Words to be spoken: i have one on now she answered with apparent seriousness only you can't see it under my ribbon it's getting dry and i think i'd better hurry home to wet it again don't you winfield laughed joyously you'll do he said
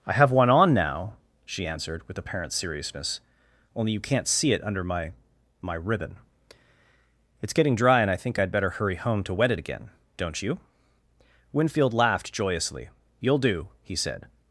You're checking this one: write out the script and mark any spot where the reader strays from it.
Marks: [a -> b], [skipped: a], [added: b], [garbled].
i have one on now she answered with apparent seriousness only you can't see it under my [added: my] ribbon it's getting dry and i think i'd better hurry home to wet it again don't you winfield laughed joyously you'll do he said